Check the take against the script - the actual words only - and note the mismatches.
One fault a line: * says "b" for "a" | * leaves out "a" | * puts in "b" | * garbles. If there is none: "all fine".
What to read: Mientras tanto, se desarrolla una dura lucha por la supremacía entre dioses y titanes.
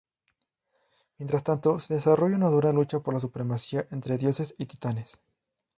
all fine